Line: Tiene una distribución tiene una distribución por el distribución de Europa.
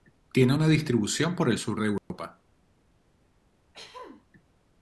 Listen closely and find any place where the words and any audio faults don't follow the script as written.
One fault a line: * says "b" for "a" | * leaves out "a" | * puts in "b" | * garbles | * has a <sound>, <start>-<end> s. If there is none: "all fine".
* leaves out "tiene una distribución"
* says "sur" for "distribución"
* has a dropout, 2.0-2.1 s
* has a throat clearing, 3.7-4.3 s